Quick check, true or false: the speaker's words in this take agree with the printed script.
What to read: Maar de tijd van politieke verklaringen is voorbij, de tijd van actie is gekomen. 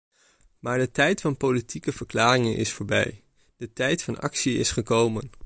true